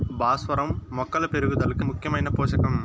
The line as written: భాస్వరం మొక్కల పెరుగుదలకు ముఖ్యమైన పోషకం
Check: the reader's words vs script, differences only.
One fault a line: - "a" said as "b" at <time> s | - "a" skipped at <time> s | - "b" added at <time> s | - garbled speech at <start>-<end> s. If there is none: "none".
none